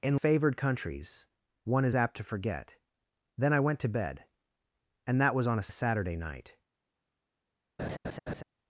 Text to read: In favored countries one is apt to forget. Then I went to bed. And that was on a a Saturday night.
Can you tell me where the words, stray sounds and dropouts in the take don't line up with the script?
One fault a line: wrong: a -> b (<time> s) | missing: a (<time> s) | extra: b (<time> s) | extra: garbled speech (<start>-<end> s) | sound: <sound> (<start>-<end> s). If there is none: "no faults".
sound: laugh (7.8-8.4 s)